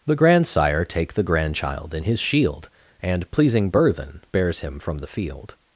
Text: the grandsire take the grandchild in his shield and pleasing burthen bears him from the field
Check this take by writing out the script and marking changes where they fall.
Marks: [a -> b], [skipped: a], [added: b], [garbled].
the grandsire take the grandchild in his shield and pleasing burthen bears him from the field